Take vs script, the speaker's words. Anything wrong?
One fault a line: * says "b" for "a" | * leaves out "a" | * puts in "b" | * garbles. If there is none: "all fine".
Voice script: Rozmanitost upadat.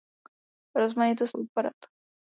all fine